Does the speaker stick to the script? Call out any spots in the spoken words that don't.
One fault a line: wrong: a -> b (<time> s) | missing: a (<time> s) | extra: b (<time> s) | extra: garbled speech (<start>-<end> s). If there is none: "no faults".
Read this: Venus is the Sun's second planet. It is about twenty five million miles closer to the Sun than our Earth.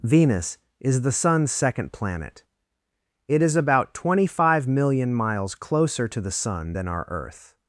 no faults